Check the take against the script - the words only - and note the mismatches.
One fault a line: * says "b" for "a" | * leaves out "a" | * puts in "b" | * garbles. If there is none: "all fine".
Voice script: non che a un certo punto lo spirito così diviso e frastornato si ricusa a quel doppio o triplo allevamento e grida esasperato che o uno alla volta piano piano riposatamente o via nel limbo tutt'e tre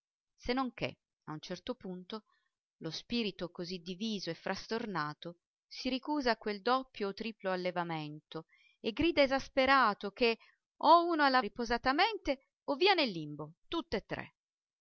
* leaves out "volta piano piano"